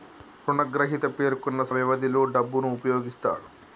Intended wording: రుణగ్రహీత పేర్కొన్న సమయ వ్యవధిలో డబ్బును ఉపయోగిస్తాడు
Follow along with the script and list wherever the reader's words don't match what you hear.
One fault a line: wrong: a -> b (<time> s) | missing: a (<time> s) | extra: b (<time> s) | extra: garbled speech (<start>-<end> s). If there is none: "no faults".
missing: సమయ (1.6 s)